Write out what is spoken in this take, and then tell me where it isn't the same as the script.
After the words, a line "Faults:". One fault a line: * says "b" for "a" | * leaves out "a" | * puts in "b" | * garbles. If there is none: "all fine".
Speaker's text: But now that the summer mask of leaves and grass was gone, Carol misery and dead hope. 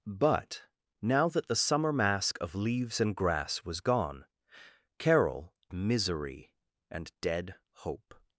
But now that the summer mask of leaves and grass was gone, Carol misery and dead hope.
Faults:
all fine